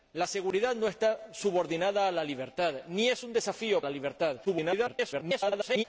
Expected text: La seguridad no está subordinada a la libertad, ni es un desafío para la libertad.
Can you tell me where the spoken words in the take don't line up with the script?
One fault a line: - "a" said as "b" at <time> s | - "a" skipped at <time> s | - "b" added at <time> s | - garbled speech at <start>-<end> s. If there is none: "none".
- "para" skipped at 3.8 s
- garbled speech at 4.4-5.8 s